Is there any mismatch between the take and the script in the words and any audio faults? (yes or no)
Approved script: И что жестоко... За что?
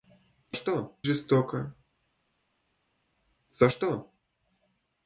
no